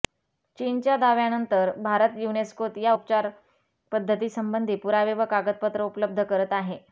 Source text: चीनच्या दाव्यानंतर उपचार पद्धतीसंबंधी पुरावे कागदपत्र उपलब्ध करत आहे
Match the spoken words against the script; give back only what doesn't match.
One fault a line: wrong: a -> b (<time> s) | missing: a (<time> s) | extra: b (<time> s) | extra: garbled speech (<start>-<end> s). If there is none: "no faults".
extra: भारत युनेस्कोत या (1.8 s)
extra: व (5.1 s)